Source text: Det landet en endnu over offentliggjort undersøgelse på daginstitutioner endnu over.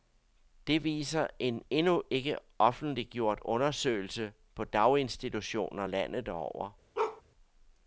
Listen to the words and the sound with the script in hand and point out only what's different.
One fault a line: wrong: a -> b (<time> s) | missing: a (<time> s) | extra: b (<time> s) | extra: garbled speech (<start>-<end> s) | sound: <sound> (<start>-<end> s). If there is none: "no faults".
wrong: landet -> viser (0.8 s)
wrong: over -> ikke (2.1 s)
wrong: endnu -> landet (5.8 s)
sound: bark (6.9-7.2 s)